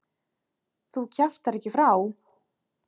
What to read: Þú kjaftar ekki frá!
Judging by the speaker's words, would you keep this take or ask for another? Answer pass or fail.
pass